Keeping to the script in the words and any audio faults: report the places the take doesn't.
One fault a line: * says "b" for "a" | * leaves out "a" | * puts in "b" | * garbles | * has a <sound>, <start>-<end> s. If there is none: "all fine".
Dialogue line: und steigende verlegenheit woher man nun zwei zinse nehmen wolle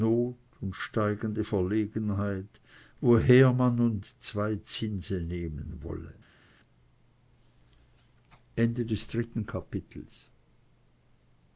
all fine